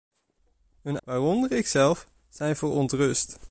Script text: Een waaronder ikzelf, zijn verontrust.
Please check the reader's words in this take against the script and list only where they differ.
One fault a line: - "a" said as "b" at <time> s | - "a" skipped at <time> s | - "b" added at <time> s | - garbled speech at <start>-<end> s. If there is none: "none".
none